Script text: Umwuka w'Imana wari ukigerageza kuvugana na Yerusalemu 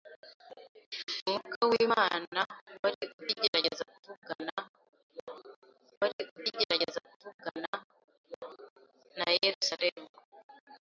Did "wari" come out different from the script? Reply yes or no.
no